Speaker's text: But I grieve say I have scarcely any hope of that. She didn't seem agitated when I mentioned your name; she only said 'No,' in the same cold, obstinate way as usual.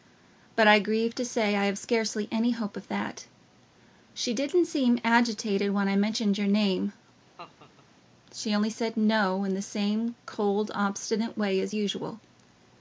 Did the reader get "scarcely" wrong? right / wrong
right